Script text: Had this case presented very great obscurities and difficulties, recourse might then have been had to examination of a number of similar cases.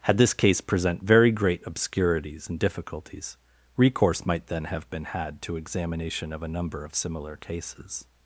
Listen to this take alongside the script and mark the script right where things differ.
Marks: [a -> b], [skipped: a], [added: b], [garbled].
Had this case [presented -> present] very great obscurities and difficulties, recourse might then have been had to examination of a number of similar cases.